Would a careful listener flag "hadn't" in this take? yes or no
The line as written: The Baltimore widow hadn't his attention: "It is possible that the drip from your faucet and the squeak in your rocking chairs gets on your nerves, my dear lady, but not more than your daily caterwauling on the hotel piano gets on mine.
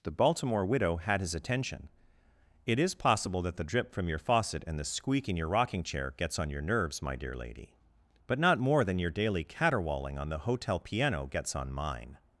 yes